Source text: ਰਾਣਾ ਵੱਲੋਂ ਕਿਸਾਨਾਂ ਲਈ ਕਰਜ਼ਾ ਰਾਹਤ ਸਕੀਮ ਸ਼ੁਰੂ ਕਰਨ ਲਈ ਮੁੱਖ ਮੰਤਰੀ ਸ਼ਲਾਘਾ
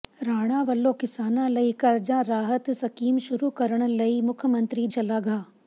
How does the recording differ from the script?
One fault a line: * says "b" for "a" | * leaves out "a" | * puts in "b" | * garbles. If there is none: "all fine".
all fine